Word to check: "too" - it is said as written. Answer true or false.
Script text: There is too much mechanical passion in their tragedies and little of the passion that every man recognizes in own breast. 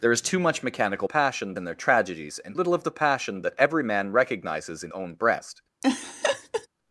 true